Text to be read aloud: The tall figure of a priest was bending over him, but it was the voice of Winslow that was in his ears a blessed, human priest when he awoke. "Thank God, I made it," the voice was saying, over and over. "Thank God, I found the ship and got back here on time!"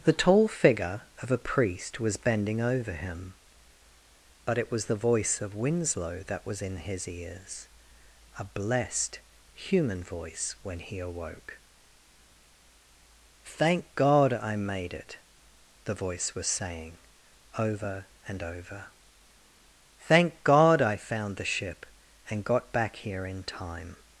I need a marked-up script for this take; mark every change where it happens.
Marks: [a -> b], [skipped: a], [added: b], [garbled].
The tall figure of a priest was bending over him, but it was the voice of Winslow that was in his ears a blessed, human [priest -> voice] when he awoke. "Thank God, I made it," the voice was saying, over and over. "Thank God, I found the ship and got back here [on -> in] time!"